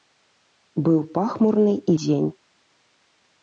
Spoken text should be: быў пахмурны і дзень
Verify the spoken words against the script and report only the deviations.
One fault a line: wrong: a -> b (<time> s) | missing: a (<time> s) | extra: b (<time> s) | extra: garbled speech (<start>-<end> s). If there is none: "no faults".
no faults